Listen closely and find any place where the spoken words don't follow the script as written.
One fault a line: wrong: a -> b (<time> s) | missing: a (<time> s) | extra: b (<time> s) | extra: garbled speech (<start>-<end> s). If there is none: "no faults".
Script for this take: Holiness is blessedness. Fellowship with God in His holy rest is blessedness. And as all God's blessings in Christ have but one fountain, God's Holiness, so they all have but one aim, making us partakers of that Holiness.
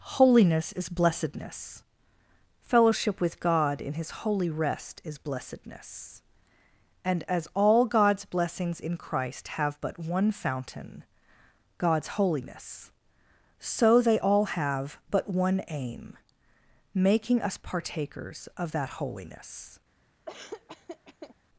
no faults